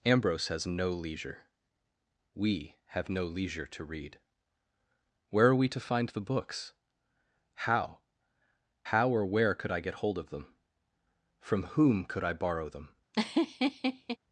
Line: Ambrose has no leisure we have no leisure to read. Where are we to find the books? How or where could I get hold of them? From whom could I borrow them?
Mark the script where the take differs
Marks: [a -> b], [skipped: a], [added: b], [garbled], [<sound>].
Ambrose has no leisure we have no leisure to read. Where are we to find the books? How [added: How] or where could I get hold of them? From whom could I borrow them? [laugh]